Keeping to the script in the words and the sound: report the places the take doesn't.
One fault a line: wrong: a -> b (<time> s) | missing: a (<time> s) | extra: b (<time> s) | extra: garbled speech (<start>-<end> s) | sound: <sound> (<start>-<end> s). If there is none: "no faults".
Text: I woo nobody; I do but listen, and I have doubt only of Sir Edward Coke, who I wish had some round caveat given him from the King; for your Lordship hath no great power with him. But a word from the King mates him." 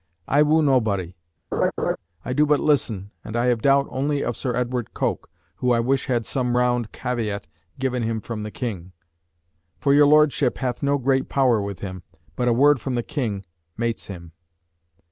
sound: laugh (1.5-2.0 s)